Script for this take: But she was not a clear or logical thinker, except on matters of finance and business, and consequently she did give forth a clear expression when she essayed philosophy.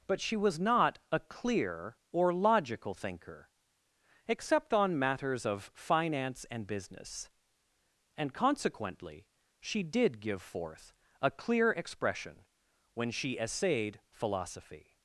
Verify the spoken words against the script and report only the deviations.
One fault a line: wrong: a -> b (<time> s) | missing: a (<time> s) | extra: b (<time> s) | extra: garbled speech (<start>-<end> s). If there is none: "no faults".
no faults